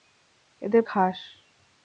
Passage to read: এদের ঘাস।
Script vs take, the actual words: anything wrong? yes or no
no